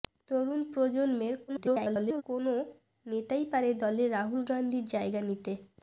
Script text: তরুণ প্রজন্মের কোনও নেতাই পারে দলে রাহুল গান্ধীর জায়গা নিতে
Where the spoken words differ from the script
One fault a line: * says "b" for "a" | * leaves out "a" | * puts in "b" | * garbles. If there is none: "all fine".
* garbles